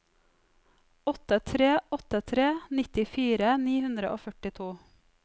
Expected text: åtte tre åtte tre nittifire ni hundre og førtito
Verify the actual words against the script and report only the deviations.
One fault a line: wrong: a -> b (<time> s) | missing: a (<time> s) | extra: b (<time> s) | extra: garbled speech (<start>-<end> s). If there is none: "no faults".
no faults